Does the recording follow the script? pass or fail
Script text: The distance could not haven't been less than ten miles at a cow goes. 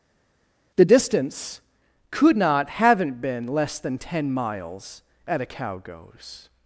pass